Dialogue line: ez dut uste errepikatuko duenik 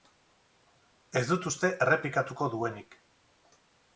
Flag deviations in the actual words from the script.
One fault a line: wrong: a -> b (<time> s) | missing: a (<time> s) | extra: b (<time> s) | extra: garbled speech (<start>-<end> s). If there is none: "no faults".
no faults